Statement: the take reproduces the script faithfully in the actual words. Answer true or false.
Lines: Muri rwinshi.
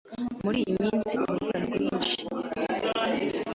false